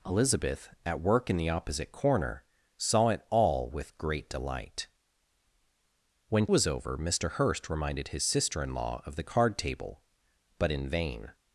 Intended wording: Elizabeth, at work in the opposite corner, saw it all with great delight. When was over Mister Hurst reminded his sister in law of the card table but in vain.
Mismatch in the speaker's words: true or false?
false